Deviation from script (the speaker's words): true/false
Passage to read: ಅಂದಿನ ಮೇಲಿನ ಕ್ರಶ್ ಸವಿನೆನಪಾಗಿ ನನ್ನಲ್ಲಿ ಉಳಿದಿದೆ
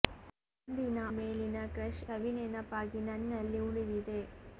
false